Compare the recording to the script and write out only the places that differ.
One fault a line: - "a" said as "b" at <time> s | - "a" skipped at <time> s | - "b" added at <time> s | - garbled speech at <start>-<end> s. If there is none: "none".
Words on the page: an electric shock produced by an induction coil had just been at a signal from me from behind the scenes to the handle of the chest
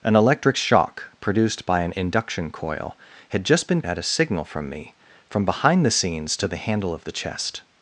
none